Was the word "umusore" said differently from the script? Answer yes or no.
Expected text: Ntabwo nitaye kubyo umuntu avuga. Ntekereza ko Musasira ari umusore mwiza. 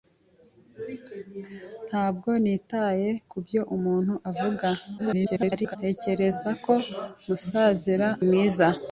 yes